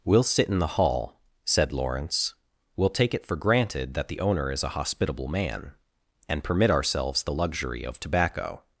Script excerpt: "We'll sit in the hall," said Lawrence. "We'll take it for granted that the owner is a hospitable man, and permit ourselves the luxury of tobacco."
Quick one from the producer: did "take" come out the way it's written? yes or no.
yes